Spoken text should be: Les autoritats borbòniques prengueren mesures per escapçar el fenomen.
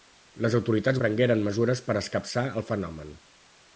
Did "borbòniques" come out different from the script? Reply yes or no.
yes